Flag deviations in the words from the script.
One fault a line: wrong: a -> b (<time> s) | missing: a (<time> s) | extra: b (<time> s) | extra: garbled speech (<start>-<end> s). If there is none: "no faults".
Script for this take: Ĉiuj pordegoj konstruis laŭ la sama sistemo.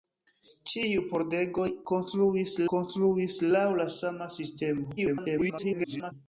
extra: konstruis (2.7 s)
extra: garbled speech (5.0-6.1 s)